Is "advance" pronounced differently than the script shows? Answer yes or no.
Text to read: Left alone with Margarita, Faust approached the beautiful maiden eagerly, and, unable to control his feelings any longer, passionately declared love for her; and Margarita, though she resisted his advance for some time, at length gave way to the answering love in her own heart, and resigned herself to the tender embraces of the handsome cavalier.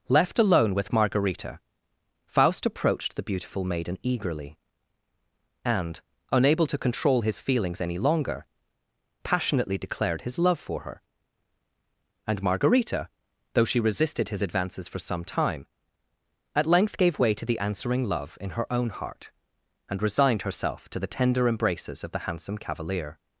yes